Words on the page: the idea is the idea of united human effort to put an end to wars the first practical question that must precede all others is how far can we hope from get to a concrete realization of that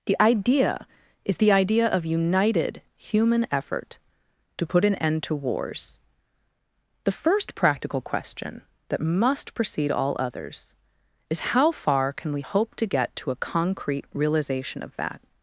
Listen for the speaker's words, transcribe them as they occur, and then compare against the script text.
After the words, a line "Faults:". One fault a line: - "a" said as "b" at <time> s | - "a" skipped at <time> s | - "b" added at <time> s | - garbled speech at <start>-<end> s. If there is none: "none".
the idea is the idea of united human effort to put an end to wars the first practical question that must precede all others is how far can we hope to get to a concrete realization of that
Faults:
- "from" said as "to" at 12.8 s